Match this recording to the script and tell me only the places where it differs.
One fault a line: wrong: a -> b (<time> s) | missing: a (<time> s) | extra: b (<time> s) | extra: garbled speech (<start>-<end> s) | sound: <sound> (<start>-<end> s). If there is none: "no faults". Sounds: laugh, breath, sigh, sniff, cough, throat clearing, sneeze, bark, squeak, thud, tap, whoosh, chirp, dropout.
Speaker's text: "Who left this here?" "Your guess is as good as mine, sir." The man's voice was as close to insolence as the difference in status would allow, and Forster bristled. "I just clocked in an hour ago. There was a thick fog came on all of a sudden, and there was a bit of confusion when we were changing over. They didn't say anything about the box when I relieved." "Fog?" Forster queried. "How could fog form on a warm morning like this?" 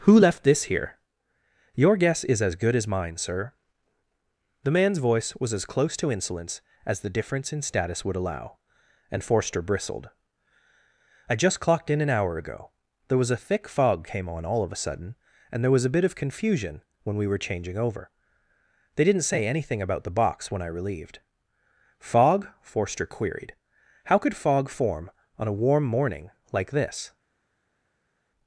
no faults